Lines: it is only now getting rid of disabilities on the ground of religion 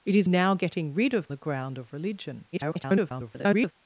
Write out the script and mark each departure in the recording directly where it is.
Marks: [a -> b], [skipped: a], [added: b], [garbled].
it is [skipped: only] now getting rid of [skipped: disabilities on] the ground of religion [garbled]